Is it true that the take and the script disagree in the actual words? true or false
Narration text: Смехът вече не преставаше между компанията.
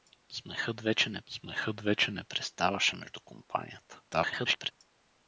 true